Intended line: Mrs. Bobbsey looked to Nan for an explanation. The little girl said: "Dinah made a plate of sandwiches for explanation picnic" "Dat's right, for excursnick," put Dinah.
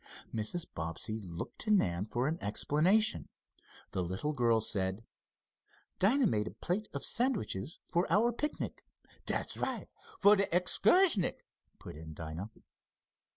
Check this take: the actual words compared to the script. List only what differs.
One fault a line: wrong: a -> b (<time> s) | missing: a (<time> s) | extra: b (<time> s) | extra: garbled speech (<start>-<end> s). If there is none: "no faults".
wrong: explanation -> our (8.1 s)
extra: de (10.3 s)
extra: in (12.0 s)